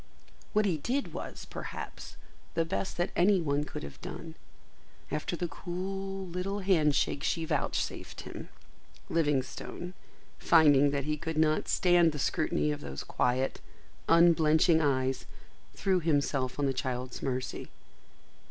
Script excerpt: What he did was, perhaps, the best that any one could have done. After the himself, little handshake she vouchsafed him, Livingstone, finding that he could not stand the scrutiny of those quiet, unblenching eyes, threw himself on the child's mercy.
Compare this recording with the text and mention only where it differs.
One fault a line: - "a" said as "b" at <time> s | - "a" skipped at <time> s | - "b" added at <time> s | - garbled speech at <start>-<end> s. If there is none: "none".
- "himself" said as "cool" at 5.5 s